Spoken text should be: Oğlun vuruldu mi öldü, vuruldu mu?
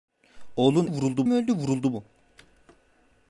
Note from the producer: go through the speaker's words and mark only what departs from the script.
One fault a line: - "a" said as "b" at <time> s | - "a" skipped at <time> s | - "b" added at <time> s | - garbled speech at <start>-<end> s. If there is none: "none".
none